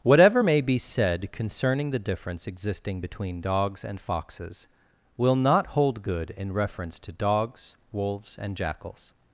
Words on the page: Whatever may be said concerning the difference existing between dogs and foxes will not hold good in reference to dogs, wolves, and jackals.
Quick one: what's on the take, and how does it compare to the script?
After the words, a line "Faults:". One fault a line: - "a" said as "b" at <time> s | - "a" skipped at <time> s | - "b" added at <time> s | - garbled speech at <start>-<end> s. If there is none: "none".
Whatever may be said concerning the difference existing between dogs and foxes will not hold good in reference to dogs, wolves, and jackals.
Faults:
none